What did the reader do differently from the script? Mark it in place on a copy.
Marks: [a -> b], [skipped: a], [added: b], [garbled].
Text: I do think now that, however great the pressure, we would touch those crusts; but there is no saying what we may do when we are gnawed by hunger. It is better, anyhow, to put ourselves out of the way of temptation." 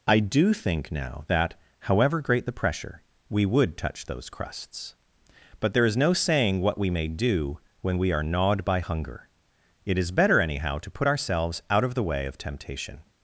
I do think now that, however great the pressure, we would touch those crusts; but there is no saying what we may do when we are gnawed by hunger. It is better, anyhow, to put ourselves out of the way of temptation."